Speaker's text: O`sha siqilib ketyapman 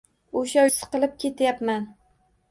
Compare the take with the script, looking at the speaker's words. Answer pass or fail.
pass